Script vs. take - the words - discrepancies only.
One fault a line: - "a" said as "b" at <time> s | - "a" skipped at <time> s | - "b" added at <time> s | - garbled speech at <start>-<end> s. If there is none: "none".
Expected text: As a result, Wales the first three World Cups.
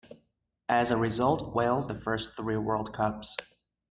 none